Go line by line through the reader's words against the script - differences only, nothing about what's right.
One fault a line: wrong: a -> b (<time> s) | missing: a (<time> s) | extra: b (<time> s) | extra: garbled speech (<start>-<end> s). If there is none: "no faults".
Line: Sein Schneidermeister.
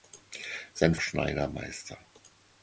no faults